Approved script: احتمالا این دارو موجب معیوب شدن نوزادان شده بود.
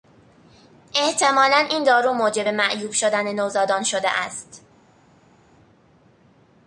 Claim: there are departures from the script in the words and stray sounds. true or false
true